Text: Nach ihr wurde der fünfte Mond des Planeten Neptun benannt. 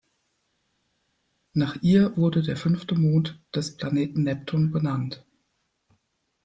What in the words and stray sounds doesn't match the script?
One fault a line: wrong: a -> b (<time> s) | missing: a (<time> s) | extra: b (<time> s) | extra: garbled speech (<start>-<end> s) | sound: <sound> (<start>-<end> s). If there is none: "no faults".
no faults